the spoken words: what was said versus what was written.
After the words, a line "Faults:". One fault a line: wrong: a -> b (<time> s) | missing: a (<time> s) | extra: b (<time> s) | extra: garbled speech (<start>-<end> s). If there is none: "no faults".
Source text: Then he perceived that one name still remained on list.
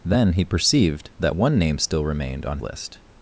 Then he perceived that one name still remained on list.
Faults:
no faults